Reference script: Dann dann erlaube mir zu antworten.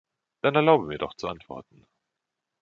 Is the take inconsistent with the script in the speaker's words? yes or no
yes